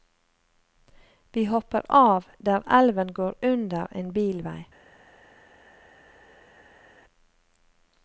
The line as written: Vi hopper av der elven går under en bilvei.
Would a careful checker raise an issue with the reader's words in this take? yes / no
no